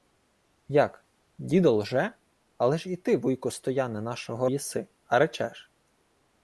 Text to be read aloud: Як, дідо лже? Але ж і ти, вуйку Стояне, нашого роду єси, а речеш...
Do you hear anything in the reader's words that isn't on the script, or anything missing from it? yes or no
yes